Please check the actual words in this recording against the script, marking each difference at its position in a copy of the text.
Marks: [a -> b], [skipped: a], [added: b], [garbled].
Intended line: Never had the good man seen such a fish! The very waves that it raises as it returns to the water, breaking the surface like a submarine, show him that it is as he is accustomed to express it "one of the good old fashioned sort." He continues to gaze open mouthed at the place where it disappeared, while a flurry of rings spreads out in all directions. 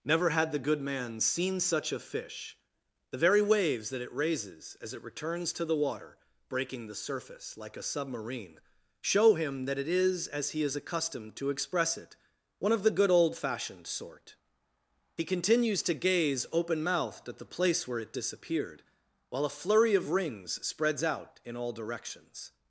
Never had the good man seen such a fish! The very waves that it raises as it returns to the water, breaking the surface like a submarine, show him that it is as he is accustomed to express it "one of the good old fashioned sort." He continues to gaze open mouthed at the place where it disappeared, while a flurry of rings spreads out in all directions.